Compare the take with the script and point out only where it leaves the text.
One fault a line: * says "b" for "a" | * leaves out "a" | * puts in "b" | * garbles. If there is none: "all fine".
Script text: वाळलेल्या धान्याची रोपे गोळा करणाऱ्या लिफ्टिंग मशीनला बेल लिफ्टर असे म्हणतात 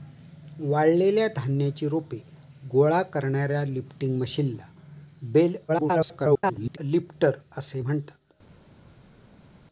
* garbles